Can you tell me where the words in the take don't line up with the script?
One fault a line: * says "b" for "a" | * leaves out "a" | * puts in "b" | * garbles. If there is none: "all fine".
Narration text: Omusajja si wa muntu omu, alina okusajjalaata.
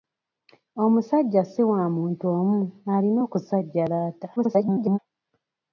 * garbles